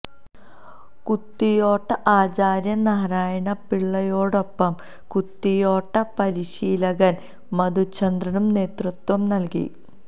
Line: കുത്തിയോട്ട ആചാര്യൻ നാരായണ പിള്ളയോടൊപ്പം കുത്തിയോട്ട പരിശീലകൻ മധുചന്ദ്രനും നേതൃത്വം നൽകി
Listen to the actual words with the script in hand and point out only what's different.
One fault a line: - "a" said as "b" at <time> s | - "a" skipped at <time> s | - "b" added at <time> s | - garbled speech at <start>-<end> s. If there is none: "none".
none